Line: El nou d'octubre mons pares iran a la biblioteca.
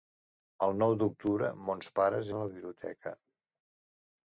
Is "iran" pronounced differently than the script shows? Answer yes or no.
yes